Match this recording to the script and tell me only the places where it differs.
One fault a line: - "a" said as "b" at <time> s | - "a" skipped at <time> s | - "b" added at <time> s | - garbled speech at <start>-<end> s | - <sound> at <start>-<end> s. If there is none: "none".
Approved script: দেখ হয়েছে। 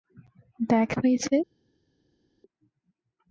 none